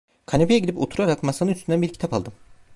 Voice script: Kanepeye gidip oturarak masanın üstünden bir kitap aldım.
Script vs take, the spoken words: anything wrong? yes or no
no